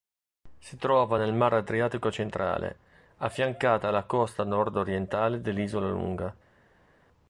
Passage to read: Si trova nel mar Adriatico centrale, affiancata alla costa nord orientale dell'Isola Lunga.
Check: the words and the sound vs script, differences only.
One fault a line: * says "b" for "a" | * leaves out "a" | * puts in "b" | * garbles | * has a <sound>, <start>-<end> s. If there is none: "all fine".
all fine